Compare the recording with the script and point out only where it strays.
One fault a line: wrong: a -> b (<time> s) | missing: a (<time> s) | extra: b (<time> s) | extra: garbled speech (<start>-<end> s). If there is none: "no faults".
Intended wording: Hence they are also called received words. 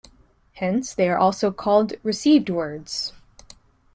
no faults